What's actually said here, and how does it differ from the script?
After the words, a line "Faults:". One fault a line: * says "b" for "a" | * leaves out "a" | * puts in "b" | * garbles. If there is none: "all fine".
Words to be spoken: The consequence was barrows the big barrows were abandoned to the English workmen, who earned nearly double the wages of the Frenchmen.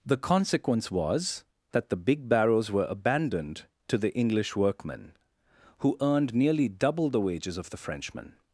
The consequence was that the big barrows were abandoned to the English workmen, who earned nearly double the wages of the Frenchmen.
Faults:
* says "that" for "barrows"